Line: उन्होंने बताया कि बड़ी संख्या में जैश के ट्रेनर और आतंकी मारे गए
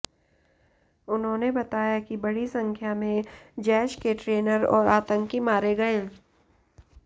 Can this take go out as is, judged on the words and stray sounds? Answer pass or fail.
pass